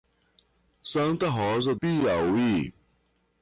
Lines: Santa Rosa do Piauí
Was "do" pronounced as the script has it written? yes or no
no